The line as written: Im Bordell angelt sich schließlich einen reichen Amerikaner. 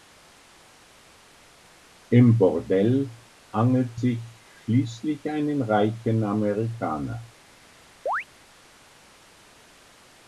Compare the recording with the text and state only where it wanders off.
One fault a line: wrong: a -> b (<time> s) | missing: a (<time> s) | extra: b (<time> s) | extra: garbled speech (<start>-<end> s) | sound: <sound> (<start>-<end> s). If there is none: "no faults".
sound: chirp (8.1-8.2 s)